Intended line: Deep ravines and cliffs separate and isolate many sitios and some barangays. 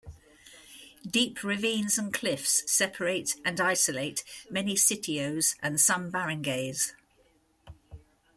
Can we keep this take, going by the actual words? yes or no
yes